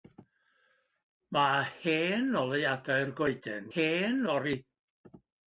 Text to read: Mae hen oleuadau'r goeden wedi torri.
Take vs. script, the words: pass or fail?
fail